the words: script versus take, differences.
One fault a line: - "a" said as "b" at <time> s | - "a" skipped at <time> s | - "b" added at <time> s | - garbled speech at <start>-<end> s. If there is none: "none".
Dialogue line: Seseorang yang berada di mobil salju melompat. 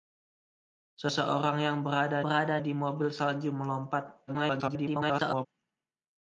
- "berada" added at 2.2 s
- garbled speech at 4.3-5.5 s